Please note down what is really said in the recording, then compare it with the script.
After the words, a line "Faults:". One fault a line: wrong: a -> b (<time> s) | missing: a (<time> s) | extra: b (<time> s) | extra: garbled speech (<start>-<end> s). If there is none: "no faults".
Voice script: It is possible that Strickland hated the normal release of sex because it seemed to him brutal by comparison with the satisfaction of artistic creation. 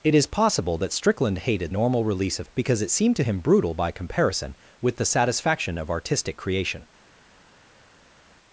It is possible that Strickland hated normal release of because it seemed to him brutal by comparison with the satisfaction of artistic creation.
Faults:
missing: the (1.7 s)
missing: sex (2.5 s)